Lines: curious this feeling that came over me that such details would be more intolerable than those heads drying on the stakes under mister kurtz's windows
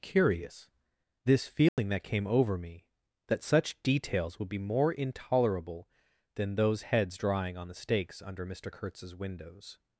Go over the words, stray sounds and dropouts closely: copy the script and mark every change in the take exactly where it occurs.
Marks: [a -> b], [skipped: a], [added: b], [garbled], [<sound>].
curious this feeling [dropout] that came over me that such details would be more intolerable than those heads drying on the stakes under mister kurtz's windows